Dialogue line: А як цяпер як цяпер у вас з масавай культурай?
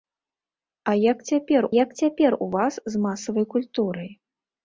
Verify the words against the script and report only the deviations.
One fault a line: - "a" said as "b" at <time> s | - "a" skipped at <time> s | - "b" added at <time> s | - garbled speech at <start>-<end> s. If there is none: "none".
none